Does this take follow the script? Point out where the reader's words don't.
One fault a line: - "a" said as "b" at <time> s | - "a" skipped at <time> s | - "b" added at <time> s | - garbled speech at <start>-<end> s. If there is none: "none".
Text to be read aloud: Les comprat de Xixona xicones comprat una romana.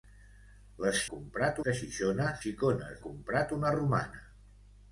none